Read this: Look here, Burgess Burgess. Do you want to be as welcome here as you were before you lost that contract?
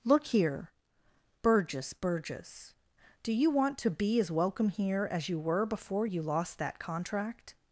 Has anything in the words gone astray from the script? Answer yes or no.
no